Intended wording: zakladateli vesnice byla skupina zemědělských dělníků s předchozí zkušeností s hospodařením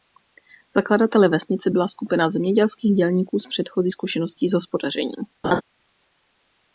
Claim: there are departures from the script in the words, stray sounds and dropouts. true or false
true